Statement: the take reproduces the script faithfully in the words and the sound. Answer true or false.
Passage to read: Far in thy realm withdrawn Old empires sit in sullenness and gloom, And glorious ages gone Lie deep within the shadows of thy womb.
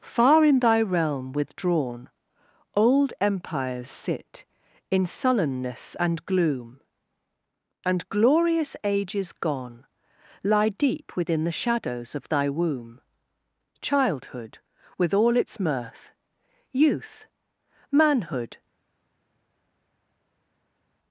false